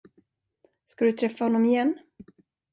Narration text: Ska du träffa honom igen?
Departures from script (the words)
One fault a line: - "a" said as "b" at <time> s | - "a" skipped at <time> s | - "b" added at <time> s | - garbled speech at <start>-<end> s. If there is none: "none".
none